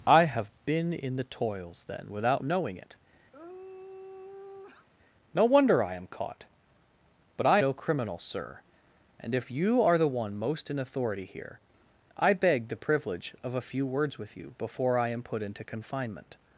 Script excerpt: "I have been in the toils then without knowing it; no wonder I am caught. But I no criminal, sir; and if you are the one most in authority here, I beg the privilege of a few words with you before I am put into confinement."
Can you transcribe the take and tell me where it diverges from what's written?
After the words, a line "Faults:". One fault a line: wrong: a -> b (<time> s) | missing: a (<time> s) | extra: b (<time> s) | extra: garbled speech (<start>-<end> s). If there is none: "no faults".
"I have been in the toils then without knowing it; no wonder I am caught. But I no criminal, sir; and if you are the one most in authority here, I beg the privilege of a few words with you before I am put into confinement."
Faults:
no faults